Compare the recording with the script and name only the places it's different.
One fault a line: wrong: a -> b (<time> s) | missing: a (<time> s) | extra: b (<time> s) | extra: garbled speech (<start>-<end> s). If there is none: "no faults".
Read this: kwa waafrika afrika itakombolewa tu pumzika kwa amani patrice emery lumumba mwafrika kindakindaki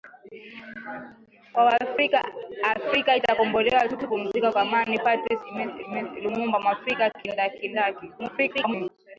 extra: tu (4.0 s)
extra: emery (5.9 s)
extra: garbled speech (8.2-8.9 s)